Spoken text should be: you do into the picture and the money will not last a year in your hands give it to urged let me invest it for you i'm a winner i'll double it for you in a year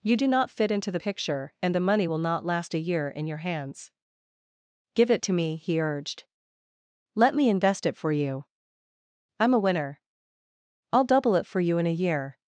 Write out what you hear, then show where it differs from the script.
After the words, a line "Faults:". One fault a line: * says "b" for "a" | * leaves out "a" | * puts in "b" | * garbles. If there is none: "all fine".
you do not fit into the picture and the money will not last a year in your hands give it to me he urged let me invest it for you i'm a winner i'll double it for you in a year
Faults:
* puts in "not fit"
* puts in "me he"